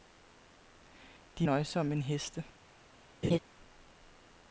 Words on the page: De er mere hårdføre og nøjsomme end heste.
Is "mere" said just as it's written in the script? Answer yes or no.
no